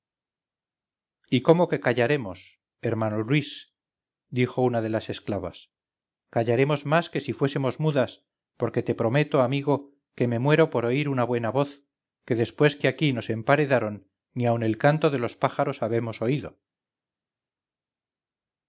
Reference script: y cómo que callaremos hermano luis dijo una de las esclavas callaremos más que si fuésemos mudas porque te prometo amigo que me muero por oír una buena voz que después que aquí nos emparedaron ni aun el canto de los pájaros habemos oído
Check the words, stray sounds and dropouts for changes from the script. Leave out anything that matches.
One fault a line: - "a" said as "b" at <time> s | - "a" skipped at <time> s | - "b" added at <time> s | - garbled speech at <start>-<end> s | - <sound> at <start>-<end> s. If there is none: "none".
none